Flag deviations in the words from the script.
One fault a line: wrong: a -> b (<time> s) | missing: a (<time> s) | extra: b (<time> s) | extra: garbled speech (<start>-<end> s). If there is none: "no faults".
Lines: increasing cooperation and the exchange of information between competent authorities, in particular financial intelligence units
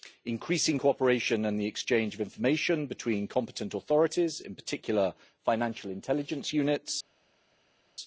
no faults